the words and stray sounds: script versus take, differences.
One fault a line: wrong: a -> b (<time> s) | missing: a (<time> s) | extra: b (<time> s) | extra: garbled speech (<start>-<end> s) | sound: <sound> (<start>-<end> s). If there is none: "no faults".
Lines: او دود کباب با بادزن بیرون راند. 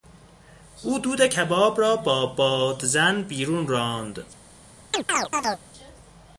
extra: را (1.8 s)
sound: chirp (4.9-5.6 s)